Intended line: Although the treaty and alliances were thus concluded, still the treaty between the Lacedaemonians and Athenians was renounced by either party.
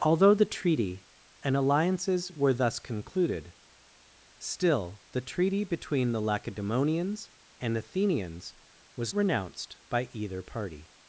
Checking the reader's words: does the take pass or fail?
pass